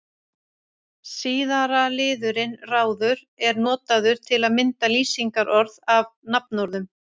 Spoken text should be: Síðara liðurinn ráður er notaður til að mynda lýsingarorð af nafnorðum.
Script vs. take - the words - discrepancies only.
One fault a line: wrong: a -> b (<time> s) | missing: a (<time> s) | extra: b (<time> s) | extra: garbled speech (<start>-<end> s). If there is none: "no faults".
no faults